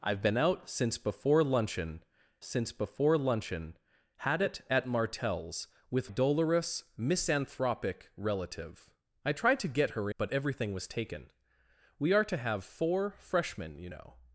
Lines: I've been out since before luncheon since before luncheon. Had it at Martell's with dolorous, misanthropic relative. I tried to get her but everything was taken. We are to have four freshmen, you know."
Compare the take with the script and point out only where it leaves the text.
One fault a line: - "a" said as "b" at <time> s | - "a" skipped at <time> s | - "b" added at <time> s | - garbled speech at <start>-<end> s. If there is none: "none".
none